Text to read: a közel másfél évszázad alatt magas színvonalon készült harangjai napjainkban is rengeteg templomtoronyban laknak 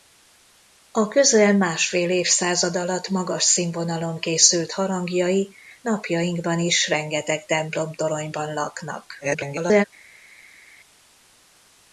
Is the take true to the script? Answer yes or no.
no